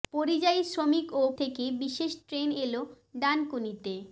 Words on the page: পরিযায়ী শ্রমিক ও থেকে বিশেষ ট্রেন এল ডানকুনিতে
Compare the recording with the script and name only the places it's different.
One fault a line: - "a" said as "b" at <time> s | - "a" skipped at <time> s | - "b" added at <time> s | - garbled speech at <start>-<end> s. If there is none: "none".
none